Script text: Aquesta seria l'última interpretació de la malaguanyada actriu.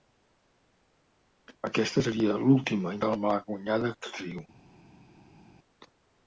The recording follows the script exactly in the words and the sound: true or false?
false